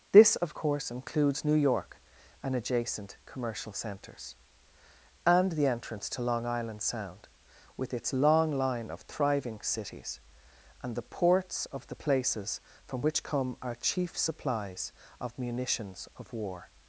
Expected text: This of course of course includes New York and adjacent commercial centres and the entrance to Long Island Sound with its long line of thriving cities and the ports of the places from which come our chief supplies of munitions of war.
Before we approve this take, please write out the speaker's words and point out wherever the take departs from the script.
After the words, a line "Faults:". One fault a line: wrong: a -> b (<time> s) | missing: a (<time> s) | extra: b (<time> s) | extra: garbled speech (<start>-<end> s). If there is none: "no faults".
This of course includes New York and adjacent commercial centres and the entrance to Long Island Sound with its long line of thriving cities and the ports of the places from which come our chief supplies of munitions of war.
Faults:
missing: of course (0.9 s)